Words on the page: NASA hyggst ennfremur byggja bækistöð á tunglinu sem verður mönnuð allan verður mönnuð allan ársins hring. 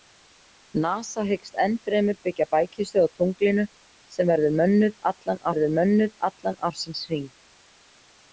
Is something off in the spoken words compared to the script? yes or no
no